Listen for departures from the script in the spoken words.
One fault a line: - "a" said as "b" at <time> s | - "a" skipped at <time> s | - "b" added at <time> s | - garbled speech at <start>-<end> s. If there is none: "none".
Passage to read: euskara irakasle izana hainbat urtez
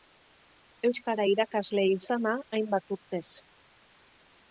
none